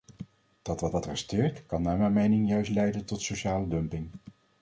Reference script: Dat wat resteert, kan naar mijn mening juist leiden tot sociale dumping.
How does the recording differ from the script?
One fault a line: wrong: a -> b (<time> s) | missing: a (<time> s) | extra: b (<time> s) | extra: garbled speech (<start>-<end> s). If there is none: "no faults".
extra: wat (0.9 s)